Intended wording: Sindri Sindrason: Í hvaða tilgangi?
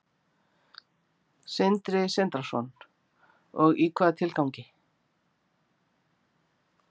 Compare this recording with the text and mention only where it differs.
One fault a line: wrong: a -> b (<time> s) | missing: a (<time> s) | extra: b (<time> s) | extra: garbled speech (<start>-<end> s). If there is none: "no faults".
extra: Og (3.6 s)